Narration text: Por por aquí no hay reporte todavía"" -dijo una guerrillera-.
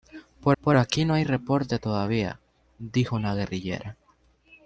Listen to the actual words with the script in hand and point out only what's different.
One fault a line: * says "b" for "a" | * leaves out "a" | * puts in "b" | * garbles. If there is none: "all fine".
all fine